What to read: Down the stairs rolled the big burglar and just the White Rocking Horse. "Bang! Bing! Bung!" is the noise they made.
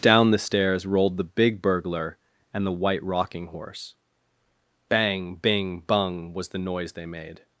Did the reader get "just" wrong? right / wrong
wrong